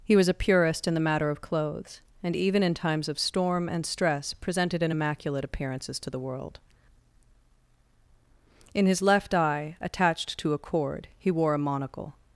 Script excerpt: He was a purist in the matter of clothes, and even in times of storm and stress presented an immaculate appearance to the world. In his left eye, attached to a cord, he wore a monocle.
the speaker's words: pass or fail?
fail